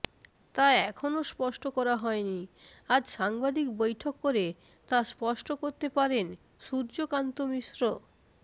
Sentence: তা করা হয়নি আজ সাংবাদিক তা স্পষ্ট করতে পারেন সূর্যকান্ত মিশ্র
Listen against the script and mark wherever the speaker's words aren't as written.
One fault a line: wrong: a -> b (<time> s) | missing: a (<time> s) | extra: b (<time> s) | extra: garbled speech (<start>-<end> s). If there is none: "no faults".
extra: এখনও স্পষ্ট (0.8 s)
extra: বৈঠক করে (3.8 s)